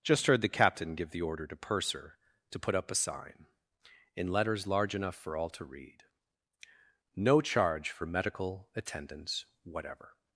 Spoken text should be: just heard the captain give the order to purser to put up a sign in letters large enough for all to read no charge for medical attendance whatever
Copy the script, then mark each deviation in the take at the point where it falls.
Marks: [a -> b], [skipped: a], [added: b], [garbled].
just heard the captain give the order to purser to put up a sign in letters large enough for all to read no charge for medical attendance whatever